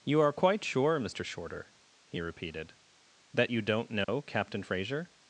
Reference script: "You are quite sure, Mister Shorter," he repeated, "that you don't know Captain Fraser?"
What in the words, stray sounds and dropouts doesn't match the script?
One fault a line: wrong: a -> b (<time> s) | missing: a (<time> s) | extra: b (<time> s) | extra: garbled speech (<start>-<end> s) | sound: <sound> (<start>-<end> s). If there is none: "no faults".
sound: dropout (4.0-4.1 s)